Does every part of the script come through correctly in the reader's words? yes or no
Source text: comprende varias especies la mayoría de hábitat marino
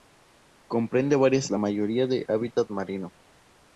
no